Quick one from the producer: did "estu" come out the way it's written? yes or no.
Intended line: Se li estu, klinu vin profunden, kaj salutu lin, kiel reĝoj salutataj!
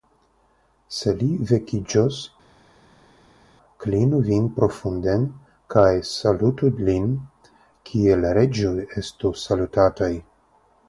no